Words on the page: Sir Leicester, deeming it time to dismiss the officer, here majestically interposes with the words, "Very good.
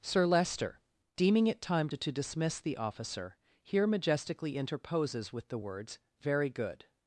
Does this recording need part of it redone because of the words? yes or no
yes